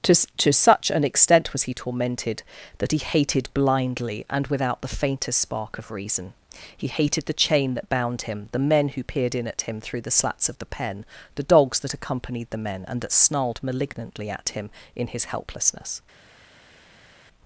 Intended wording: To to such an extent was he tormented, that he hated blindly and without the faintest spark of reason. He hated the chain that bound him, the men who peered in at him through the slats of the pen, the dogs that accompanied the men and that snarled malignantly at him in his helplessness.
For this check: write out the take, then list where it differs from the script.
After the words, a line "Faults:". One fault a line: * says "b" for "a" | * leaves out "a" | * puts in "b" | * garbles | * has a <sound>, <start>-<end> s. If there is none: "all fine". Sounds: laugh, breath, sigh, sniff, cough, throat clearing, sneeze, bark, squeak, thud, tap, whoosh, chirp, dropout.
To to such an extent was he tormented, that he hated blindly and without the faintest spark of reason. He hated the chain that bound him, the men who peered in at him through the slats of the pen, the dogs that accompanied the men and that snarled malignantly at him in his helplessness.
Faults:
all fine